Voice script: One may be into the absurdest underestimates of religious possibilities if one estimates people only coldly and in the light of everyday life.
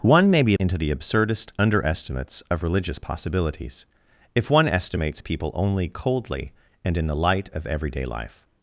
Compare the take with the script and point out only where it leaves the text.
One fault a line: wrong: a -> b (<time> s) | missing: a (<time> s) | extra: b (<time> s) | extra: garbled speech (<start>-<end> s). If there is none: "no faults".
no faults